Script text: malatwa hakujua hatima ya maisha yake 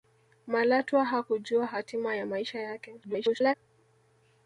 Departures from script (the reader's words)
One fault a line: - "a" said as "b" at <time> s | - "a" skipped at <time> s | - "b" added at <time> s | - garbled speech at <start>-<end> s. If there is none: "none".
- garbled speech at 3.0-3.5 s